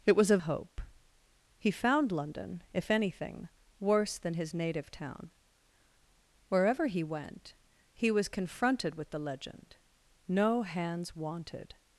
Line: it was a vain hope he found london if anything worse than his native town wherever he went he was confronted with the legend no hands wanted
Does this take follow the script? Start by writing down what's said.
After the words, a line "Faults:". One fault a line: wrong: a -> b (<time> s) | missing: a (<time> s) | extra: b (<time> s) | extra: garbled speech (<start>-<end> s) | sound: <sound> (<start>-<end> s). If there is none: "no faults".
it was a hope he found london if anything worse than his native town wherever he went he was confronted with the legend no hands wanted
Faults:
missing: vain (0.4 s)